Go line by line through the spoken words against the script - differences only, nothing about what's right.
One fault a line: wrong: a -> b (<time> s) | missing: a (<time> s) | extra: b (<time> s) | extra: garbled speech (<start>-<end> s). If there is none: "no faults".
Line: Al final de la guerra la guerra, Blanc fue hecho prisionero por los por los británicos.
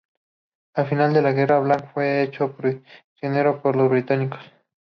missing: la guerra (1.6 s)
missing: por los (3.9 s)